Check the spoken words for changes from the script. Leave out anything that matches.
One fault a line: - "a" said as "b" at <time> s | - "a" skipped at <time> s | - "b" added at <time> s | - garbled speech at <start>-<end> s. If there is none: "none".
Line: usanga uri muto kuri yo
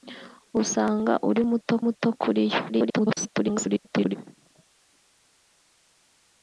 - "muto" added at 1.8 s
- garbled speech at 2.7-4.2 s